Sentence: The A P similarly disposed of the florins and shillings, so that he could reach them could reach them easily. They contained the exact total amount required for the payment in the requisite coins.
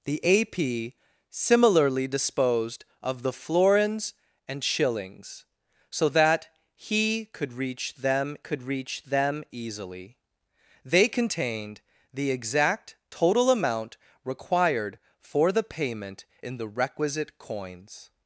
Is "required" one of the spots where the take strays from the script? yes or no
no